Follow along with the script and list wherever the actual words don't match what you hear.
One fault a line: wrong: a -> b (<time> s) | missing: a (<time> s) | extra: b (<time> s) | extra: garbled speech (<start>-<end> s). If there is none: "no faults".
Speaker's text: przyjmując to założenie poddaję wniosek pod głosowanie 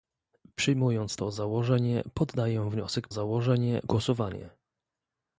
wrong: pod -> założenie (3.1 s)